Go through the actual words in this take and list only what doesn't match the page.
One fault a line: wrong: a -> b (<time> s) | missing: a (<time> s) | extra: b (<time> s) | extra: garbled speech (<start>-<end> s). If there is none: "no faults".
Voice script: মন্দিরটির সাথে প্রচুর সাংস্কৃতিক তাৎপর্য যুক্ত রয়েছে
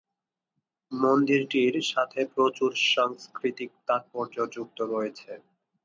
no faults